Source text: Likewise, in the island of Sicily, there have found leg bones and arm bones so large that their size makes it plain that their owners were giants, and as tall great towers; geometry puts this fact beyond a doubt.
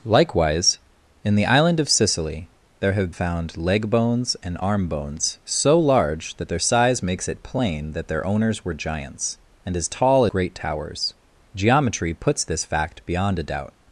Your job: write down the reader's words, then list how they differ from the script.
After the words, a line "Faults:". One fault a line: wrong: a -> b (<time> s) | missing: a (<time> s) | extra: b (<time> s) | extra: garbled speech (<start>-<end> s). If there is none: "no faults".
Likewise, in the island of Sicily, there have found leg bones and arm bones so large that their size makes it plain that their owners were giants, and as tall great towers; geometry puts this fact beyond a doubt.
Faults:
no faults